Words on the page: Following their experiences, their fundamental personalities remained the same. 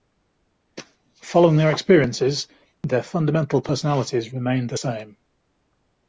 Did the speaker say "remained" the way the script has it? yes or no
yes